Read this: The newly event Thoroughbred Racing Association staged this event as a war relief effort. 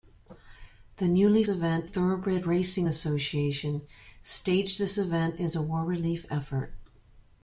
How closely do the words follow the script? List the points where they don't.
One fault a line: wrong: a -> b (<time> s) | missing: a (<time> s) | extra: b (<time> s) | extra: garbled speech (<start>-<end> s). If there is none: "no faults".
no faults